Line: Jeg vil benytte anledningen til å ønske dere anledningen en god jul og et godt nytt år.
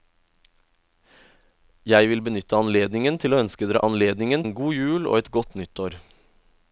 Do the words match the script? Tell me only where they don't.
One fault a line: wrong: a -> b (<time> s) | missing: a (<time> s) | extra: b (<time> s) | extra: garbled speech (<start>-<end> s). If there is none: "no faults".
no faults